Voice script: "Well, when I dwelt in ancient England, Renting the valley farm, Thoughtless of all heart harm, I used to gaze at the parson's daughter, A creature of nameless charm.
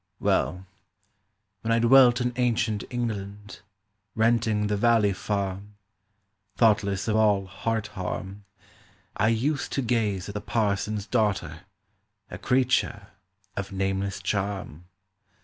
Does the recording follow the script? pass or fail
pass